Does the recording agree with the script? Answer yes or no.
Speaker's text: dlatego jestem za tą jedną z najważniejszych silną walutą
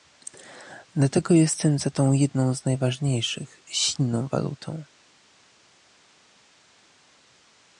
yes